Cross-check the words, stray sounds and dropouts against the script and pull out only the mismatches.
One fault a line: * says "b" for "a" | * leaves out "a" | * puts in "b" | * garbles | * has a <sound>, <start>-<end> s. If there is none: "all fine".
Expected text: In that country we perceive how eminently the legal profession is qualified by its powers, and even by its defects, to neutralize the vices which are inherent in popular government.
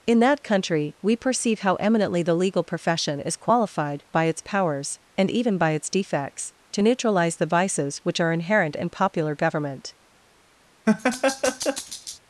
* has a laugh, 10.9-12.2 s